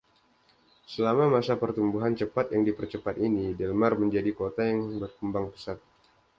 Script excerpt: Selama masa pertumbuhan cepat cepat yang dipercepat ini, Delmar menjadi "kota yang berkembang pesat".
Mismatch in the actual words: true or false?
true